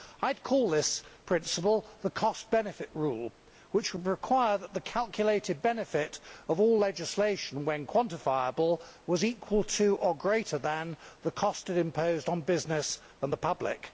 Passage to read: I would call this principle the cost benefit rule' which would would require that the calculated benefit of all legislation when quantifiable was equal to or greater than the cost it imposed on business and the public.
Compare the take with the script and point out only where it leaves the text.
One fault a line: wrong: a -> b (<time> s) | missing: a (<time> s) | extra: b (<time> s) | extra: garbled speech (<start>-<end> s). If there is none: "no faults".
missing: would (4.1 s)